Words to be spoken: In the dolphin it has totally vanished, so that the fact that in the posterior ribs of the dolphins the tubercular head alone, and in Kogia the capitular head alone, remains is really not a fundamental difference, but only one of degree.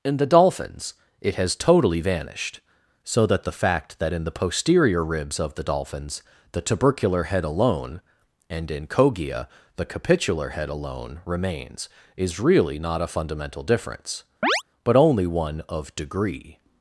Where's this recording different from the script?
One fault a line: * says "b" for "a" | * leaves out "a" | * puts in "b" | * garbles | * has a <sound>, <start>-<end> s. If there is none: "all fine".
* says "dolphins" for "dolphin"
* has a chirp, 14.4-14.6 s